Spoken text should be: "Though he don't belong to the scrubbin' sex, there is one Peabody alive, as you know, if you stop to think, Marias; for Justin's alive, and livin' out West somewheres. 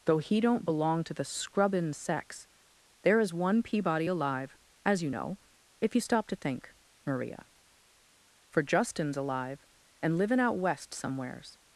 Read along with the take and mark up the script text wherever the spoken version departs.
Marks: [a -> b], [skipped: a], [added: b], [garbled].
"Though he don't belong to the scrubbin' sex, there is one Peabody alive, as you know, if you stop to think, [Marias; -> Maria] for Justin's alive, and livin' out West somewheres.